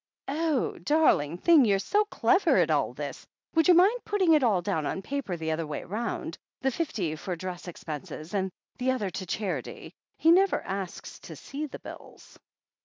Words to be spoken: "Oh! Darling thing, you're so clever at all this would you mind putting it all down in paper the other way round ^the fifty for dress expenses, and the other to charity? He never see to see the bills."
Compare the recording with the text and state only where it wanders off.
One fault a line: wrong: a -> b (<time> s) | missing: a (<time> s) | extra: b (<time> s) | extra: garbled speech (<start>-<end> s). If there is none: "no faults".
wrong: in -> on (4.9 s)
wrong: see -> asks (10.6 s)